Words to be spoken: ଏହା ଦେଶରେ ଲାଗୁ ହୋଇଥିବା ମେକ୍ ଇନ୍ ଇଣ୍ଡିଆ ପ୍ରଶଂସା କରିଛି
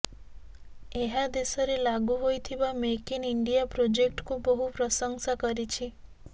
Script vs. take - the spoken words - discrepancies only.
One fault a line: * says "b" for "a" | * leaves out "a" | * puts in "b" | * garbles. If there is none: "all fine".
* puts in "ପ୍ରୋଜେକ୍ଟକୁ ବହୁ"